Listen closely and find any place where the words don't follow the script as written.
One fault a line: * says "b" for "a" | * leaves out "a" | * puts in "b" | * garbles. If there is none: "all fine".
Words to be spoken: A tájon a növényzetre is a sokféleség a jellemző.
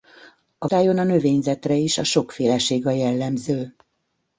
all fine